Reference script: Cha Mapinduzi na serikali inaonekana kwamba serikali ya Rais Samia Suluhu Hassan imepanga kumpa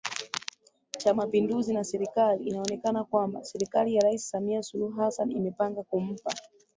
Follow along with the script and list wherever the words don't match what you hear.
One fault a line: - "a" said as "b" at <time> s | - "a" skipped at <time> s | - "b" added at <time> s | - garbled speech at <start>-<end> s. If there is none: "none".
none